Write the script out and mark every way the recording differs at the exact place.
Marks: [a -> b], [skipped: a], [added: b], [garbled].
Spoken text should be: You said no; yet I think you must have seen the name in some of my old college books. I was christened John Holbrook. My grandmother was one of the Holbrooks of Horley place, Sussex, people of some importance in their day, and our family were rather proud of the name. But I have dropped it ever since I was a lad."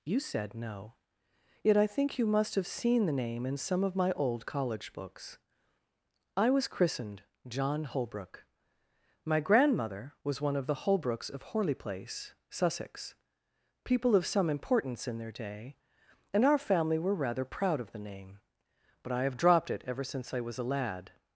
You said no; yet I think you must have seen the name in some of my old college books. I was christened John Holbrook. My grandmother was one of the Holbrooks of Horley place, Sussex, people of some importance in their day, and our family were rather proud of the name. But I have dropped it ever since I was a lad."